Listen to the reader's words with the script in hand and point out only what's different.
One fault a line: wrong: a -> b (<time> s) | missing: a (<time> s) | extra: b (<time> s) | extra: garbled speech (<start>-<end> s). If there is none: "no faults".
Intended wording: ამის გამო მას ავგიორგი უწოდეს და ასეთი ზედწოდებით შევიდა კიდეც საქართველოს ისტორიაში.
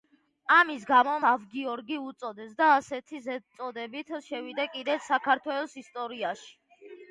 missing: მას (1.1 s)